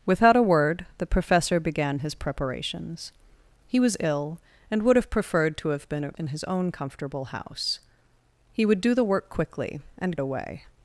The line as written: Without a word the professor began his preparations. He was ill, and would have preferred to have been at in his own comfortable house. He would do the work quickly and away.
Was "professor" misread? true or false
false